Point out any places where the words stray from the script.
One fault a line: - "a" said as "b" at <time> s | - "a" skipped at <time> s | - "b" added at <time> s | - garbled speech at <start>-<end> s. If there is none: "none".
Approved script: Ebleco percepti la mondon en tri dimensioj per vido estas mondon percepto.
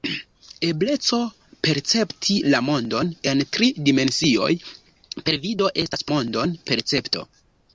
none